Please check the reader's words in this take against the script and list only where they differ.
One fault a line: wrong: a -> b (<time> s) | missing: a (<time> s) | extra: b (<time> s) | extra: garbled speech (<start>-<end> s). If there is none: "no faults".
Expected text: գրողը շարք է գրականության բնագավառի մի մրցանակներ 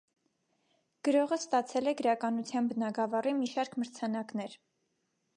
wrong: շարք -> ստացել (1.4 s)
extra: շարք (3.5 s)